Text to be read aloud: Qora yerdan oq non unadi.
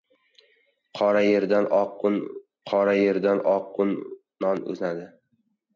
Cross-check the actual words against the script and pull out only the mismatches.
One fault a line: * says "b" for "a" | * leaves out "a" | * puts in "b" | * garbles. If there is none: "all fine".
* puts in "qora yerdan oq"